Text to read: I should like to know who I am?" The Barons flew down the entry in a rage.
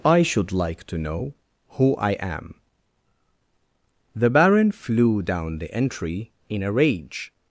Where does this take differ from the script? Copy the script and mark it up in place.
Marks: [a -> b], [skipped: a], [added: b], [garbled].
I should like to know who I am?" The [Barons -> Baron] flew down the entry in a rage.